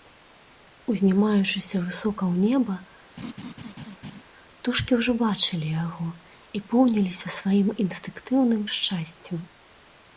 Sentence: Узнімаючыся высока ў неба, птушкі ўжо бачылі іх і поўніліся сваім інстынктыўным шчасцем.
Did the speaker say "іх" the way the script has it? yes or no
no